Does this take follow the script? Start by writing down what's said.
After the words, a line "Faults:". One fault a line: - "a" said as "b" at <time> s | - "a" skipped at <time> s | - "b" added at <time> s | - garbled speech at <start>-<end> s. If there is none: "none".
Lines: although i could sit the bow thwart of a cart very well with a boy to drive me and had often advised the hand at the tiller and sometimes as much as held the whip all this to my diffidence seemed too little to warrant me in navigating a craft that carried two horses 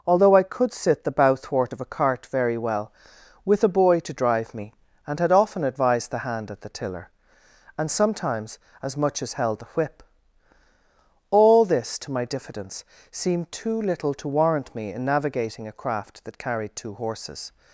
although i could sit the bow thwart of a cart very well with a boy to drive me and had often advised the hand at the tiller and sometimes as much as held the whip all this to my diffidence seemed too little to warrant me in navigating a craft that carried two horses
Faults:
none